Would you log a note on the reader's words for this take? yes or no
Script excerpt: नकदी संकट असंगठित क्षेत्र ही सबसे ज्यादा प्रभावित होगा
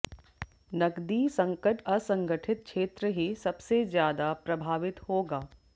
no